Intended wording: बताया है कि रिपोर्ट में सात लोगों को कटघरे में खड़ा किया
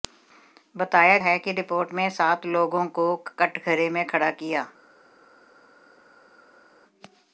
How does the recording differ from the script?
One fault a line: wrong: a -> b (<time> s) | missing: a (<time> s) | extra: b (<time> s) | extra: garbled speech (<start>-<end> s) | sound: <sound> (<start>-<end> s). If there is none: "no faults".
no faults